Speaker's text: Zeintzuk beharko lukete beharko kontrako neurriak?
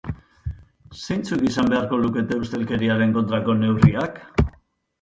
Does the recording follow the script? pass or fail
fail